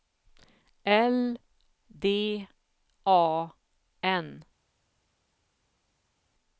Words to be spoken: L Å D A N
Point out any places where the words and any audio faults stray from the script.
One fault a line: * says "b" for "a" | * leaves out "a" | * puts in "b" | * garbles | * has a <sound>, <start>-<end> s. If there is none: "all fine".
* leaves out "Å"